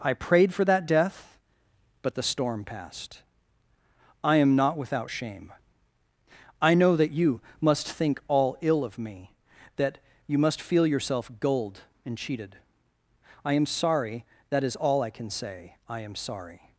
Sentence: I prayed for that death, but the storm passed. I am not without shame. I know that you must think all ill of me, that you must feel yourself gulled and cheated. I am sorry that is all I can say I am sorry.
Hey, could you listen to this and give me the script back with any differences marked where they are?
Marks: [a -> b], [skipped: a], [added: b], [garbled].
I prayed for that death, but the storm passed. I am not without shame. I know that you must think all ill of me, that you must feel yourself gulled and cheated. I am sorry that is all I can say I am sorry.